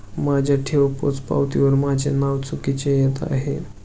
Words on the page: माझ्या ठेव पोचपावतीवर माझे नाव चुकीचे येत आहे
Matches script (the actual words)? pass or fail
pass